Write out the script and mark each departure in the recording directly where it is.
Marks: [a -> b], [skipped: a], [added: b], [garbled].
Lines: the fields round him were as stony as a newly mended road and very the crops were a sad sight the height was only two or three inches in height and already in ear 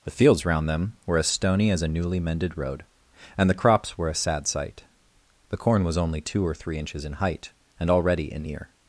the fields round [him -> them] were as stony as a newly mended road and [skipped: very] the crops were a sad sight the [height -> corn] was only two or three inches in height and already in ear